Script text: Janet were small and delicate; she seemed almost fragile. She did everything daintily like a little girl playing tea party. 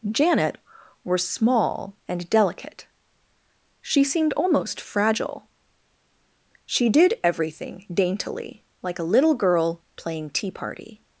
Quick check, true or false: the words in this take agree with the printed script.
true